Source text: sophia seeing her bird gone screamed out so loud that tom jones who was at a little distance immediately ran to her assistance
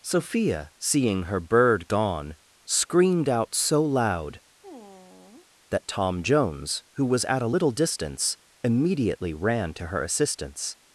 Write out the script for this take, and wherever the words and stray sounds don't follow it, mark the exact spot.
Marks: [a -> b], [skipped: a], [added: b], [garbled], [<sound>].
sophia seeing her bird gone screamed out so loud [sigh] that tom jones who was at a little distance immediately ran to her assistance